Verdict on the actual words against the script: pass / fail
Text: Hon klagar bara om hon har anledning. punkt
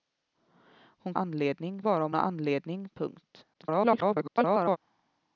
fail